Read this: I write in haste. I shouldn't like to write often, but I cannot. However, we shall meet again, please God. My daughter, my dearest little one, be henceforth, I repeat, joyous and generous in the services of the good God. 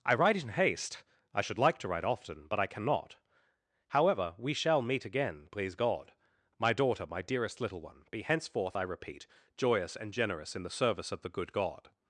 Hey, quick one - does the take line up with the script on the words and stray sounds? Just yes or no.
no